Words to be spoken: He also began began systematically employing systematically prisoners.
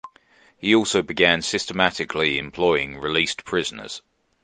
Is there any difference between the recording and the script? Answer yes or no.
yes